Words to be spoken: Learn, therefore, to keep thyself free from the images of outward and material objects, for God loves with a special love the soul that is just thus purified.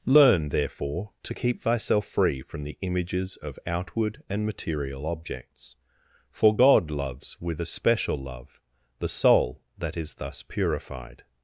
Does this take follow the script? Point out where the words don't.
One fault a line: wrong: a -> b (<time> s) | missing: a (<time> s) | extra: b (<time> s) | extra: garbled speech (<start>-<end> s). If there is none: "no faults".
missing: just (10.1 s)